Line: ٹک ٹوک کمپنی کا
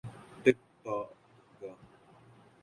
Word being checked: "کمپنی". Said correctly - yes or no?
no